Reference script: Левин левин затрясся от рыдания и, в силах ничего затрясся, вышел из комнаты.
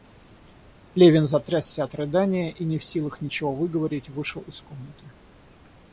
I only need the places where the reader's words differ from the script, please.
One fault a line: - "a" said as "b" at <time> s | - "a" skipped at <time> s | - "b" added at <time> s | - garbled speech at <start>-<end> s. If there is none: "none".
- "левин" skipped at 1.3 s
- "не" added at 2.6 s
- "затрясся" said as "выговорить" at 3.5 s